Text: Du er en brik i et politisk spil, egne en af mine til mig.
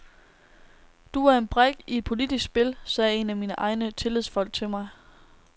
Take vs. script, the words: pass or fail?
fail